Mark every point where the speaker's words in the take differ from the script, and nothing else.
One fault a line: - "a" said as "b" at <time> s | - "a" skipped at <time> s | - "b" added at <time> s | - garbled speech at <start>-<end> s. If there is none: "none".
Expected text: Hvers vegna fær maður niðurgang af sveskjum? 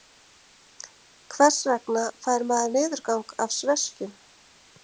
none